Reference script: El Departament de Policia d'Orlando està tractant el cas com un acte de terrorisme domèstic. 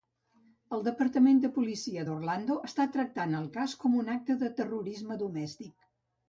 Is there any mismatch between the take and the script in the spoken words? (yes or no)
no